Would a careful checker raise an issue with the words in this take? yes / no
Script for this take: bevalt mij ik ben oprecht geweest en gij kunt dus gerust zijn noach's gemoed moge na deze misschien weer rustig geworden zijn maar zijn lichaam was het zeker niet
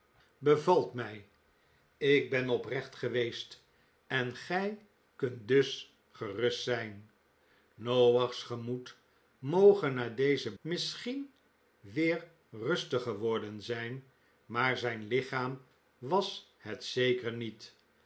no